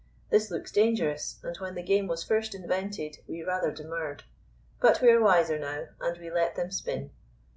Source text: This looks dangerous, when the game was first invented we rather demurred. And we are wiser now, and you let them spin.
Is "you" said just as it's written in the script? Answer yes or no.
no